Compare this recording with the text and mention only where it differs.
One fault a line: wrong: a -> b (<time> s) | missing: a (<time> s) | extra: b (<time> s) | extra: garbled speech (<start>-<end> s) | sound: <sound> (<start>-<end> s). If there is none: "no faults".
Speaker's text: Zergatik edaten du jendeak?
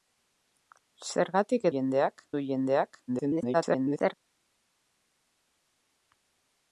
wrong: edaten -> jendeak (1.7 s)
extra: garbled speech (3.1-4.1 s)